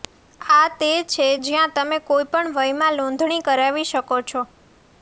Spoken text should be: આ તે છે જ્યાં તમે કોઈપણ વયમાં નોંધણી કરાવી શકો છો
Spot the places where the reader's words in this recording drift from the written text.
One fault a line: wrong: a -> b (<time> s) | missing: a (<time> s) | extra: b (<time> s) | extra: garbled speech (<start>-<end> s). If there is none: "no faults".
no faults